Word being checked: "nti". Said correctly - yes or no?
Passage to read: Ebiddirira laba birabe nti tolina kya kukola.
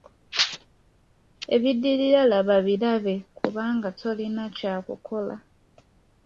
no